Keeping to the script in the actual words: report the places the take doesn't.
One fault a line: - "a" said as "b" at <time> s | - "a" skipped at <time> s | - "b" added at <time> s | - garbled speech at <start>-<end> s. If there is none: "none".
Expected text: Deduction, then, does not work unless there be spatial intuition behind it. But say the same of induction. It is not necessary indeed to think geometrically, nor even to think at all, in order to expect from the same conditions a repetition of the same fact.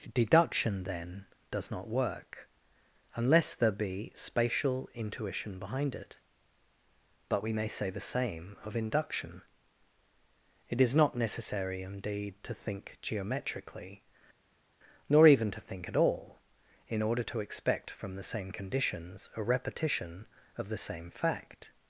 - "we may" added at 7.4 s